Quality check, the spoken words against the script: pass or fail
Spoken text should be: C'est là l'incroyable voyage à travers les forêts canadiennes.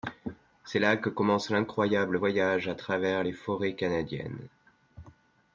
fail